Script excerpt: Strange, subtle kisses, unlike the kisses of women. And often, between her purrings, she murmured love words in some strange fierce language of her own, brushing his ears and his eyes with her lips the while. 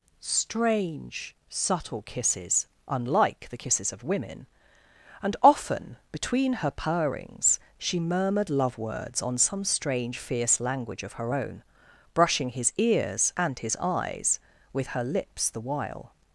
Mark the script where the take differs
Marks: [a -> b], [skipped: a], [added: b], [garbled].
Strange, subtle kisses, unlike the kisses of women. And often, between her purrings, she murmured love words [in -> on] some strange fierce language of her own, brushing his ears and his eyes with her lips the while.